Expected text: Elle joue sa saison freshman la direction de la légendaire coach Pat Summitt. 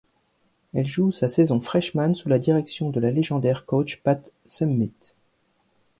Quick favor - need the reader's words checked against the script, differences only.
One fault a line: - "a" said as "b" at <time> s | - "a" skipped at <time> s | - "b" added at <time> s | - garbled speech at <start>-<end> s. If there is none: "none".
- "sous" added at 2.1 s